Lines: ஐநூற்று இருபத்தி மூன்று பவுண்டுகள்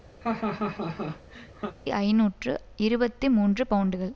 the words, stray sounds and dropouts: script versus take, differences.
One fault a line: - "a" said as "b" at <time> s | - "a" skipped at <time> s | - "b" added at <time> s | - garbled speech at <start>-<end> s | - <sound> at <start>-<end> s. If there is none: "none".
- laugh at 0.2-1.8 s